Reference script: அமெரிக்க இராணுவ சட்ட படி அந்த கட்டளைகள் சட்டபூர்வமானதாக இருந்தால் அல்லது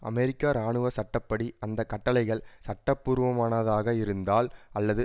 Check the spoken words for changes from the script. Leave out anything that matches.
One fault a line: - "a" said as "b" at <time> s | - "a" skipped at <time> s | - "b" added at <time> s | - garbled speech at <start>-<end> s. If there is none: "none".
none